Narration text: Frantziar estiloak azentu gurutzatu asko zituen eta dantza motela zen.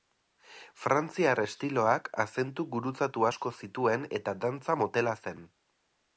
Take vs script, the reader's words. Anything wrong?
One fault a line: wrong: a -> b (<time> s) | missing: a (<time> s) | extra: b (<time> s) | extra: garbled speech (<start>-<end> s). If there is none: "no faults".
no faults